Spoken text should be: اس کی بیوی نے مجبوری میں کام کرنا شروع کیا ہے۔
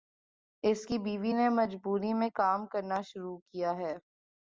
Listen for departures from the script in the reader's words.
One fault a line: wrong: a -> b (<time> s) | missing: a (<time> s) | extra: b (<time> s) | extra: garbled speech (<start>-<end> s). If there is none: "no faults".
no faults